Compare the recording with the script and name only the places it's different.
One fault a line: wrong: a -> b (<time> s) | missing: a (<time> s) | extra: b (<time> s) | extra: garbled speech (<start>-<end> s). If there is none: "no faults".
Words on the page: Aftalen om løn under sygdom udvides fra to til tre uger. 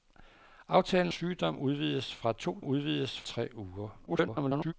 missing: om løn under (1.1 s)
wrong: til -> udvides (2.6 s)
extra: garbled speech (4.1-4.7 s)